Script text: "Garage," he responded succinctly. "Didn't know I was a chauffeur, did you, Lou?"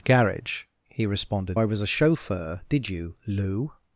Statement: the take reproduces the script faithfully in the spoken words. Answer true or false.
false